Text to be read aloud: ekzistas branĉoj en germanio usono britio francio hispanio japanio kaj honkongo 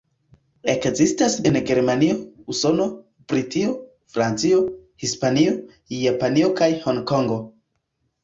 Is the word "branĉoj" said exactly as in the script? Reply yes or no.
no